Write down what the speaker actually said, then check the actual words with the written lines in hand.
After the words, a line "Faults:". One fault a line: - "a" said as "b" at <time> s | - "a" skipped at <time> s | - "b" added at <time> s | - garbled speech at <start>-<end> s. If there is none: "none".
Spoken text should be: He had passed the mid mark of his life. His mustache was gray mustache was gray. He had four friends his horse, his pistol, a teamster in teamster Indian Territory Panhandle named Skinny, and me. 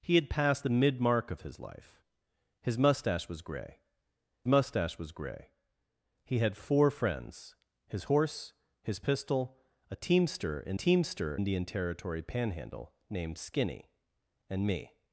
He had passed the mid mark of his life. His mustache was gray mustache was gray. He had four friends his horse, his pistol, a teamster in teamster Indian Territory Panhandle named Skinny, and me.
Faults:
none